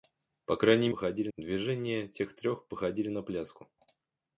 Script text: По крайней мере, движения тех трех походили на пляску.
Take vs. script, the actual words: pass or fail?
fail